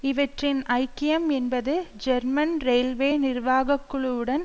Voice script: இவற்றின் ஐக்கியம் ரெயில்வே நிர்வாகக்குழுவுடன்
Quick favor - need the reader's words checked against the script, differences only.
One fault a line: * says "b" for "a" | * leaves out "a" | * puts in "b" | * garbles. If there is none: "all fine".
* puts in "என்பது ஜெர்மன்"